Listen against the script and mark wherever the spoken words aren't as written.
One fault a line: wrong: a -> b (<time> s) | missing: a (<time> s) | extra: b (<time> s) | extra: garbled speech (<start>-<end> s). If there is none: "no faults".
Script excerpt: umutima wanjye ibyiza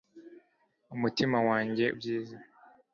no faults